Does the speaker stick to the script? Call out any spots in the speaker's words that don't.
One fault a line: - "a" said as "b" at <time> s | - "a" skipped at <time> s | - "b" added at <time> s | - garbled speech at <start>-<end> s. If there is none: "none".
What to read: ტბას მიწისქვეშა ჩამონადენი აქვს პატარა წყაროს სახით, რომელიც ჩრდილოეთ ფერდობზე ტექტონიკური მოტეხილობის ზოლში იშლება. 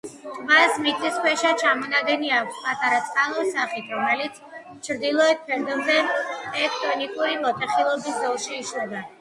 none